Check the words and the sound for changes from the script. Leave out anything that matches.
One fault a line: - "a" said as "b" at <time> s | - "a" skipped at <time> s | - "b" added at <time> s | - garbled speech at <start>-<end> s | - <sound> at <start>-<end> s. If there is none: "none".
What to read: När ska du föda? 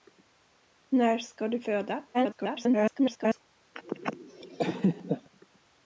- garbled speech at 2.1-3.4 s
- laugh at 3.8-5.3 s